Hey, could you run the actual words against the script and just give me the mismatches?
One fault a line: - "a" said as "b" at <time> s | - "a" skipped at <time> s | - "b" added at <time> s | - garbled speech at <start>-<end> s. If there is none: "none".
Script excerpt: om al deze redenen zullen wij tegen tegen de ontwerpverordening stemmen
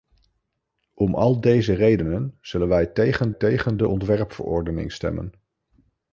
none